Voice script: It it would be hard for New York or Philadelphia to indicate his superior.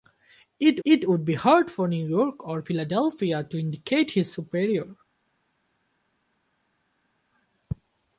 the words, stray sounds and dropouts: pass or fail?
pass